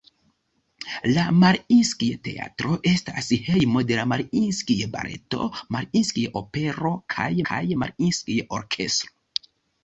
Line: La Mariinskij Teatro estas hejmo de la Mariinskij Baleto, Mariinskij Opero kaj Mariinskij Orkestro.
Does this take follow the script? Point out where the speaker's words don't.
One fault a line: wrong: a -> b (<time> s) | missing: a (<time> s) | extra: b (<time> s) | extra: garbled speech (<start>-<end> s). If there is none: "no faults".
extra: kaj (7.5 s)